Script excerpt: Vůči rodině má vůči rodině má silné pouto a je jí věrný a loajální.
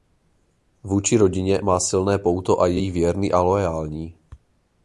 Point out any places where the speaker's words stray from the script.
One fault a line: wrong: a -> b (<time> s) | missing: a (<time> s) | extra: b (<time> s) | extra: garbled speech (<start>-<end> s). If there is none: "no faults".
missing: vůči rodině má (1.8 s)